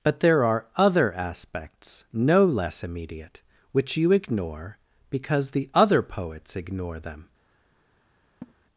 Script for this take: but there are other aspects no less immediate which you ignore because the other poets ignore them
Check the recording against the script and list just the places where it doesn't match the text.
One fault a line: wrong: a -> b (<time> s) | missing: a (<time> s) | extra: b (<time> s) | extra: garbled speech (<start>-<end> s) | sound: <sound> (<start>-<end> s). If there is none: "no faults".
sound: laugh (8.4-8.5 s)